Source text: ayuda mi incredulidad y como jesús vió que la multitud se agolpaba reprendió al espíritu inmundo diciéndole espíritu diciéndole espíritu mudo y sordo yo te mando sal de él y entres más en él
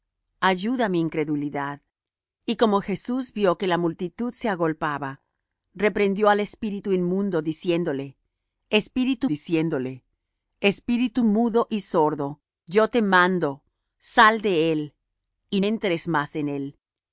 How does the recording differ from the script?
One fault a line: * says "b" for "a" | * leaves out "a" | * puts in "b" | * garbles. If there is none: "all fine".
all fine